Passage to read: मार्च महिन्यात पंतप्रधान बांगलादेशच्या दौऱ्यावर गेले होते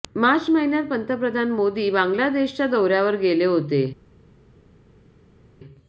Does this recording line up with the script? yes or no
no